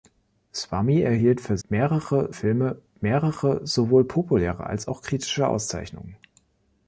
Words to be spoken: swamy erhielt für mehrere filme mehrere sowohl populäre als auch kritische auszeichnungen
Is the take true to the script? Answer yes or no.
yes